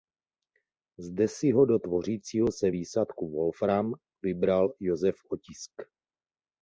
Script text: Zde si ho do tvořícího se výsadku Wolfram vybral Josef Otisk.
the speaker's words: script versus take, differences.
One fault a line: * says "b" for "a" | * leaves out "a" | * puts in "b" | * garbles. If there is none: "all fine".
all fine